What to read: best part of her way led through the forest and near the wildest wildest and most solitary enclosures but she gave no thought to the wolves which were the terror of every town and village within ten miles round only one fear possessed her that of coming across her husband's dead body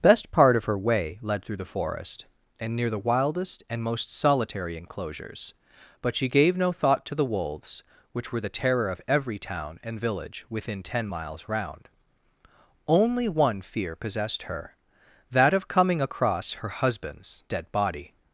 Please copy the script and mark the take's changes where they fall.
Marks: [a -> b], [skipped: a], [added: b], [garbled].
best part of her way led through the forest and near the wildest [skipped: wildest] and most solitary enclosures but she gave no thought to the wolves which were the terror of every town and village within ten miles round only one fear possessed her that of coming across her husband's dead body